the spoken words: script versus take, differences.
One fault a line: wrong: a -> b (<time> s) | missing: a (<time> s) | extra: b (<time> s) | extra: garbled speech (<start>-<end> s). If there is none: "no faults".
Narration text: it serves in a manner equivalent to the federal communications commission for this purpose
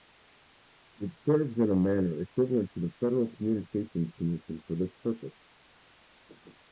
no faults